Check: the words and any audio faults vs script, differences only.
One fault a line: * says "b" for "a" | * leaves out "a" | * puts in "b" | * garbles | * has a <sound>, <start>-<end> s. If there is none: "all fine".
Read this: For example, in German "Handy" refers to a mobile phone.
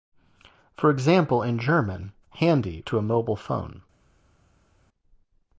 * leaves out "refers"